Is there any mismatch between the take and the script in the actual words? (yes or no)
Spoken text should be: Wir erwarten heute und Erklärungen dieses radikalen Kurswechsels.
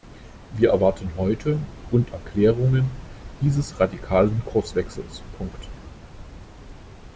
no